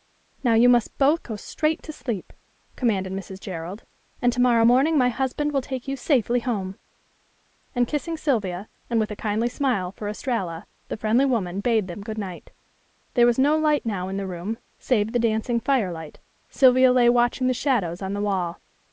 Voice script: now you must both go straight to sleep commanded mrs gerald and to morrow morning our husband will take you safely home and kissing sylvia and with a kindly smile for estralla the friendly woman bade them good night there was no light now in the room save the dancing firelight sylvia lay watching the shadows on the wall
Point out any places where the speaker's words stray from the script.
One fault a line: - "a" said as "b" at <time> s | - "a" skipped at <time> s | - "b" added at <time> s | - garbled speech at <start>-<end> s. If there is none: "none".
- "our" said as "my" at 5.0 s